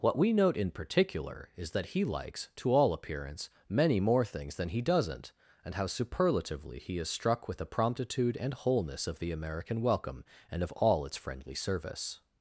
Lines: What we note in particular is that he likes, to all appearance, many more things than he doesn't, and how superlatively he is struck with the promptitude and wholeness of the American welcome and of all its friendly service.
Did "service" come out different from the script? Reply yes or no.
no